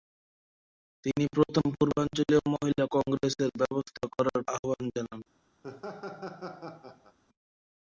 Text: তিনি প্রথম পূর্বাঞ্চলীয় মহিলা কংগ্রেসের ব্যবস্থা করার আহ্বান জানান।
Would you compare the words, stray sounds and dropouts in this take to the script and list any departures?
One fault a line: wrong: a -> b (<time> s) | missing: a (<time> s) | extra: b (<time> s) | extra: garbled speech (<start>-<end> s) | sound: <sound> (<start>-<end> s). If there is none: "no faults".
sound: laugh (5.6-7.2 s)